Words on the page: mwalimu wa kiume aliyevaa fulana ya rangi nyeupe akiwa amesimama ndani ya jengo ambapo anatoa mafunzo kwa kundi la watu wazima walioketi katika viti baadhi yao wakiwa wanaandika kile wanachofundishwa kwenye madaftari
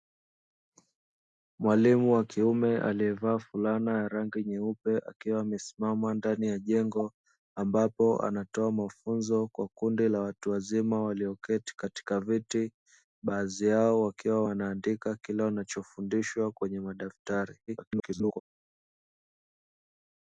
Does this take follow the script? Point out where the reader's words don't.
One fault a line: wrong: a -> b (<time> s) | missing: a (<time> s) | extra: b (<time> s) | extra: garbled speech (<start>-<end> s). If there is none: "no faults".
extra: garbled speech (17.7-18.4 s)